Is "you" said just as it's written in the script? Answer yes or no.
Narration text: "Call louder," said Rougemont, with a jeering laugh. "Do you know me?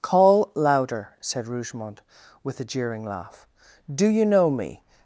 yes